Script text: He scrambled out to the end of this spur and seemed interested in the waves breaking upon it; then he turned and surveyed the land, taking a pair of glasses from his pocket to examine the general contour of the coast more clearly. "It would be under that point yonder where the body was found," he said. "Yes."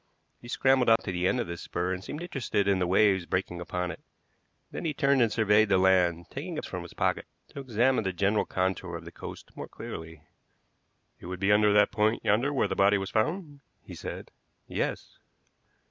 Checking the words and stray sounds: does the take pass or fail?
fail